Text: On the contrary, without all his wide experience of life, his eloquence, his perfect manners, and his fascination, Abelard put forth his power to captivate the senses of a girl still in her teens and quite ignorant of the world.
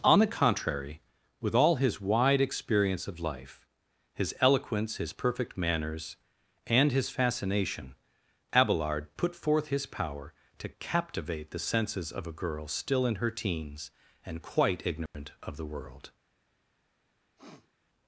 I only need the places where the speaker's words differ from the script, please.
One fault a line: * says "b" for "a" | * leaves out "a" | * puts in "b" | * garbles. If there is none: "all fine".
* says "with" for "without"